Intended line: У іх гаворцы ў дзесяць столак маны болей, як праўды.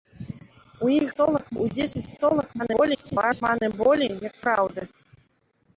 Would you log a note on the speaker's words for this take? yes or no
yes